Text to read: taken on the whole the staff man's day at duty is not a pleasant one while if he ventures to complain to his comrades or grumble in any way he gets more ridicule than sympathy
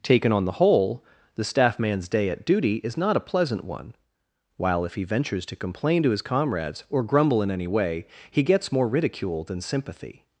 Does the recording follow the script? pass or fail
pass